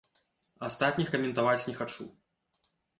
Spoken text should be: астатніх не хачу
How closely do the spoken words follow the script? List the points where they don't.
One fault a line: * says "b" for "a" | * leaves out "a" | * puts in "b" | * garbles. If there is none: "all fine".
* puts in "каментаваць"